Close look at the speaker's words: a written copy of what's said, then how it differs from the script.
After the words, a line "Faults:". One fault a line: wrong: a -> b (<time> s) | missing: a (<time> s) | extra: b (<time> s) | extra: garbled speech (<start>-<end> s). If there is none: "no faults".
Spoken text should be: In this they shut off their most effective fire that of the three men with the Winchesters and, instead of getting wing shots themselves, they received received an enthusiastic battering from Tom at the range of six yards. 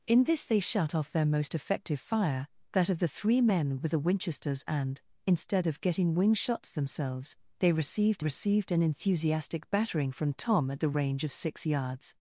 In this they shut off their most effective fire that of the three men with the Winchesters and, instead of getting wing shots themselves, they received received an enthusiastic battering from Tom at the range of six yards.
Faults:
no faults